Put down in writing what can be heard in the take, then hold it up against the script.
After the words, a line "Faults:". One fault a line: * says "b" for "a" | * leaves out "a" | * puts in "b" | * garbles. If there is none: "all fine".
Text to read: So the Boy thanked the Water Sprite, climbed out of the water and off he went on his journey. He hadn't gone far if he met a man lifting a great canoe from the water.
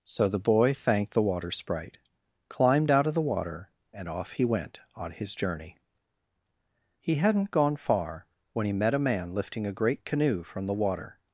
So the Boy thanked the Water Sprite, climbed out of the water and off he went on his journey. He hadn't gone far when he met a man lifting a great canoe from the water.
Faults:
* says "when" for "if"